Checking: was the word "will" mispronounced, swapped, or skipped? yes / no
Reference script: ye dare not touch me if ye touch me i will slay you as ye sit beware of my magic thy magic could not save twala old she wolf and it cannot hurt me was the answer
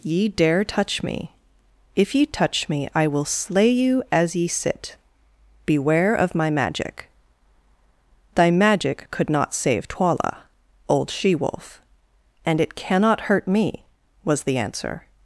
no